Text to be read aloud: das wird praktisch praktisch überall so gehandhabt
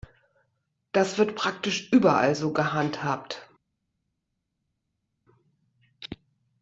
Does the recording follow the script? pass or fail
fail